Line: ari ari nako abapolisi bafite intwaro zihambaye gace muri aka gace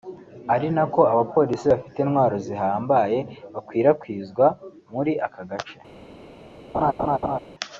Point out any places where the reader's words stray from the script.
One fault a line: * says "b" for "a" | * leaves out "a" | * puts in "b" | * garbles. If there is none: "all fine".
* leaves out "ari"
* says "bakwirakwizwa" for "gace"